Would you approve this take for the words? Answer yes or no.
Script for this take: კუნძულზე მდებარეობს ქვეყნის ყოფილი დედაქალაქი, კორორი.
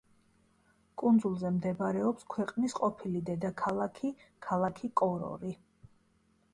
no